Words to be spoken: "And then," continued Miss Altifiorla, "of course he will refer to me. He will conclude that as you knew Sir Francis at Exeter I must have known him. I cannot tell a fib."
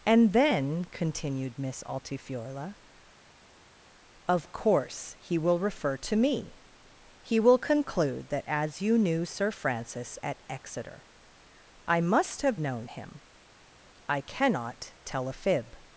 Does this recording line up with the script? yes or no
yes